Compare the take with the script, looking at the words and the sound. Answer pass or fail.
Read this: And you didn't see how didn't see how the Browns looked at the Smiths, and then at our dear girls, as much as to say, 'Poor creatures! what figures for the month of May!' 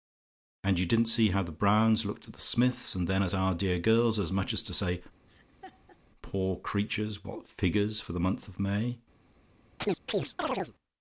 fail